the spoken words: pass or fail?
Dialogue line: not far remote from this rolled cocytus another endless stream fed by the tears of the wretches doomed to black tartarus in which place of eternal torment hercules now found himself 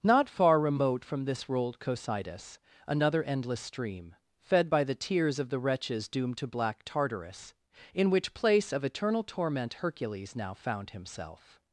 pass